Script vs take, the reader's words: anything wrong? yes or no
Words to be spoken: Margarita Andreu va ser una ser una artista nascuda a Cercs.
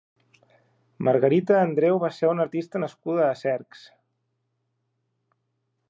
yes